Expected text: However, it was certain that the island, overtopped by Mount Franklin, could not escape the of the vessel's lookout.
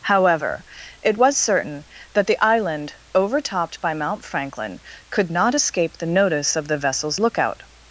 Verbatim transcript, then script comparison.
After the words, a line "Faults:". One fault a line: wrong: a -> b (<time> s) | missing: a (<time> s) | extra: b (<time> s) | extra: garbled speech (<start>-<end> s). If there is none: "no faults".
However, it was certain that the island, overtopped by Mount Franklin, could not escape the notice of the vessel's lookout.
Faults:
extra: notice (6.1 s)